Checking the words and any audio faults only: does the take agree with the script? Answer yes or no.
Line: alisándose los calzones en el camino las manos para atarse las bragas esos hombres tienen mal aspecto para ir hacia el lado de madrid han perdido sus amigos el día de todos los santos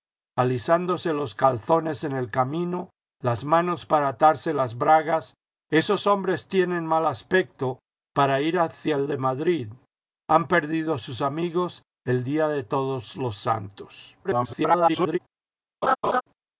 no